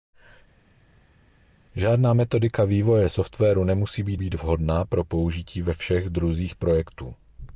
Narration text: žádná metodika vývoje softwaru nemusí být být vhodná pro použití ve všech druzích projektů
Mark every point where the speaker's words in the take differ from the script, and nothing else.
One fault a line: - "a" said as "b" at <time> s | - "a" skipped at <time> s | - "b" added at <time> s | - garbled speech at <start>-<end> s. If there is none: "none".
none